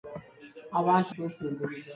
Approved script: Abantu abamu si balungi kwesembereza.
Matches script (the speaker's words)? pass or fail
fail